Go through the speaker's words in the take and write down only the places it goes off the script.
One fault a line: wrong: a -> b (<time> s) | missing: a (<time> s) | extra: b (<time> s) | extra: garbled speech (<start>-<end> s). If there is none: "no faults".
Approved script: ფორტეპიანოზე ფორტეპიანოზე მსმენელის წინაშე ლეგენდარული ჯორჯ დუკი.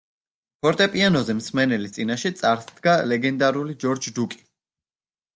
missing: ფორტეპიანოზე (1.3 s)
extra: წარსდგა (2.4 s)